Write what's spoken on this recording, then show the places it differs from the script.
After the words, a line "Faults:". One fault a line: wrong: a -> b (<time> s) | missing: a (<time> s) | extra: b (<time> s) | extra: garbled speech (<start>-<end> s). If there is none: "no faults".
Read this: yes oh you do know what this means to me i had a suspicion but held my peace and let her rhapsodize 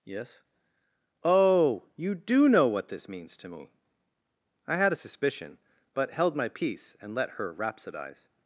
yes oh you do know what this means to me i had a suspicion but held my peace and let her rhapsodize
Faults:
no faults